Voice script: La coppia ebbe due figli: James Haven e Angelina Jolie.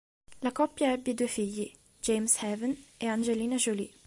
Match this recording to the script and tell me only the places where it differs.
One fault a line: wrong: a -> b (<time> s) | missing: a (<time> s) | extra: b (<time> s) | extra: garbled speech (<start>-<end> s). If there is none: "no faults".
no faults